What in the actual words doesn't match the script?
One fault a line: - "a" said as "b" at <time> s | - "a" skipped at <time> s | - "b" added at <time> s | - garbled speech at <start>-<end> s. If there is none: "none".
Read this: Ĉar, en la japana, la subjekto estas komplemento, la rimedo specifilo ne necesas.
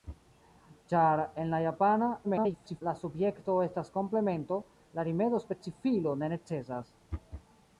- garbled speech at 2.2-2.8 s